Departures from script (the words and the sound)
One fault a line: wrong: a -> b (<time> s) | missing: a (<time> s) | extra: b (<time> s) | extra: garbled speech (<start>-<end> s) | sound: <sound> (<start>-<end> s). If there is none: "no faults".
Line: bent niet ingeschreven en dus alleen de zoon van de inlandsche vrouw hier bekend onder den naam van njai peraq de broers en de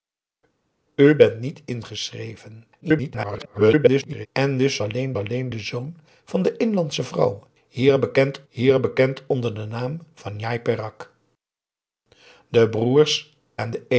extra: garbled speech (2.8-4.3 s)
extra: alleen (5.2 s)
extra: hier bekend (8.5 s)